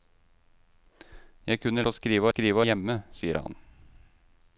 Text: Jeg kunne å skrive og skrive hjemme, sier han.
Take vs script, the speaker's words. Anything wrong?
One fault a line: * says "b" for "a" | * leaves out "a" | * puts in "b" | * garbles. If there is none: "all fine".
all fine